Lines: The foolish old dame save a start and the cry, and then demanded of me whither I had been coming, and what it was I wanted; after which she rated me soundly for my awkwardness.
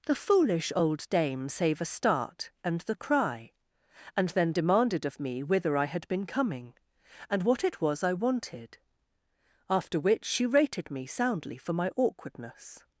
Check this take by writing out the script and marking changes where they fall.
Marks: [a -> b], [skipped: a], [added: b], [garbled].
The foolish old dame save a start and the cry, and then demanded of me whither I had been coming, and what it was I wanted; after which she rated me soundly for my awkwardness.